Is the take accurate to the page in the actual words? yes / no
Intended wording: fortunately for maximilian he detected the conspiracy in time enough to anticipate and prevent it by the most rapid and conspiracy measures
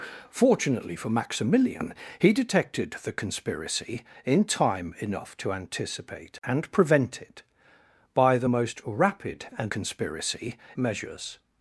yes